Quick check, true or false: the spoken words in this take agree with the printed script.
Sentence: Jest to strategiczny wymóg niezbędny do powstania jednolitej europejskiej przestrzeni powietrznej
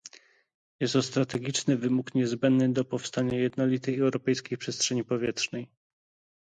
true